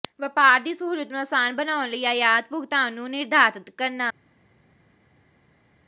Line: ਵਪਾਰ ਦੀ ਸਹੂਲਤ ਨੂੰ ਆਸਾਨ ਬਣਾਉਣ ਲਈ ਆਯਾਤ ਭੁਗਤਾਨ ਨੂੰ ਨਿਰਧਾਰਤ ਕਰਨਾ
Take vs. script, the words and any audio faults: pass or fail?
pass